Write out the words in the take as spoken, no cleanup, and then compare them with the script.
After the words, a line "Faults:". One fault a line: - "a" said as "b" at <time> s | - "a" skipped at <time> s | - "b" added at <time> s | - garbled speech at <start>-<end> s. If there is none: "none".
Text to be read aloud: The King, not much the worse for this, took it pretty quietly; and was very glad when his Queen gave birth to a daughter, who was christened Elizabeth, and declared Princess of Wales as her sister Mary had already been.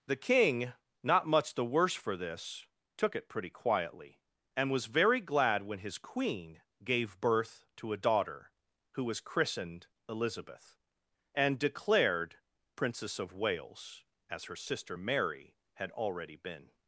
The King, not much the worse for this, took it pretty quietly; and was very glad when his Queen gave birth to a daughter, who was christened Elizabeth, and declared Princess of Wales as her sister Mary had already been.
Faults:
none